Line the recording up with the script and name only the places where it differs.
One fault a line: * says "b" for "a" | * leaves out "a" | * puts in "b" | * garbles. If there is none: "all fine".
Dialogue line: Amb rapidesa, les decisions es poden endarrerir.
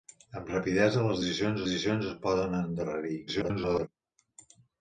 * puts in "decisions"
* garbles